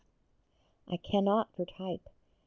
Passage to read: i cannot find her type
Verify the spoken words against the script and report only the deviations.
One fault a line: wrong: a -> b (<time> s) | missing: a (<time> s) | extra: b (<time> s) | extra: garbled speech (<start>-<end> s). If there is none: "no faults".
missing: find (1.6 s)